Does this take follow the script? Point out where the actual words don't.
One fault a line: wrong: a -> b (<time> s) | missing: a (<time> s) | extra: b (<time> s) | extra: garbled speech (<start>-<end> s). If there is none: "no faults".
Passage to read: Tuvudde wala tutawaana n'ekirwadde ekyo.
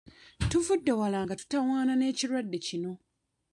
extra: nga (1.2 s)
wrong: ekyo -> kino (2.7 s)